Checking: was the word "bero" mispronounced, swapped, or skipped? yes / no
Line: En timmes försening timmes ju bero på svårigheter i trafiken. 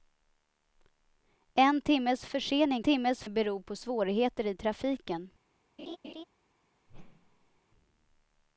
no